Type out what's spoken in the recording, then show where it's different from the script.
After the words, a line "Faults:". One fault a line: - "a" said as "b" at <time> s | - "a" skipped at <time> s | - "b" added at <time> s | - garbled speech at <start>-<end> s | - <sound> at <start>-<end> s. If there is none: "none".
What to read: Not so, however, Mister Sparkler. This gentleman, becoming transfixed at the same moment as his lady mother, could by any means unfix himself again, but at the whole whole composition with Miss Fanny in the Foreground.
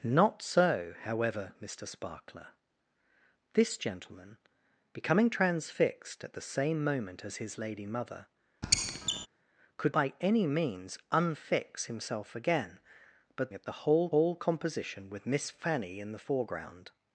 Not so, however, Mister Sparkler. This gentleman, becoming transfixed at the same moment as his lady mother, could by any means unfix himself again, but at the whole whole composition with Miss Fanny in the Foreground.
Faults:
- squeak at 8.6-9.3 s